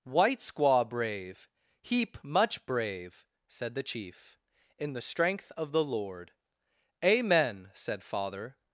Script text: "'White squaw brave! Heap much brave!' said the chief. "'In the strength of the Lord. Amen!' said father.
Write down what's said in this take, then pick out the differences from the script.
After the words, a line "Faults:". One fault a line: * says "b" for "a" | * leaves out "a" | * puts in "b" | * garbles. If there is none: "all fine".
"'White squaw brave! Heap much brave!' said the chief. "'In the strength of the Lord. Amen!' said father.
Faults:
all fine